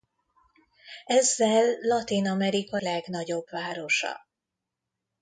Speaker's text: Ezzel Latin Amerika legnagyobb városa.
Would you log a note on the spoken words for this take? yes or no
no